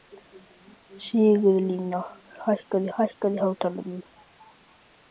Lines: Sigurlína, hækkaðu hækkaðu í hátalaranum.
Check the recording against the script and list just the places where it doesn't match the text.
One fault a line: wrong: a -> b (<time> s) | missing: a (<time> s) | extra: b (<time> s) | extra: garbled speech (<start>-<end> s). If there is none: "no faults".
no faults